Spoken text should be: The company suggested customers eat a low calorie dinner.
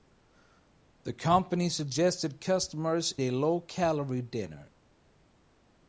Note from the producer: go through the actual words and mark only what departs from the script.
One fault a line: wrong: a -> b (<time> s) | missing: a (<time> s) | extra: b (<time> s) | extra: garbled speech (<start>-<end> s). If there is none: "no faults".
missing: eat (3.1 s)